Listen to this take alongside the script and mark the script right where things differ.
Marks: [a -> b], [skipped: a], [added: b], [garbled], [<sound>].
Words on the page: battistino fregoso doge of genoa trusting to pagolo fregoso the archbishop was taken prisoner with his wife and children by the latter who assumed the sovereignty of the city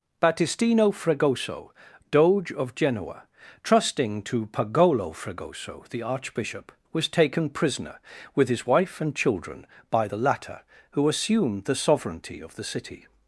battistino fregoso doge of genoa trusting to pagolo fregoso the archbishop was taken prisoner with his wife and children by the latter who assumed the sovereignty of the city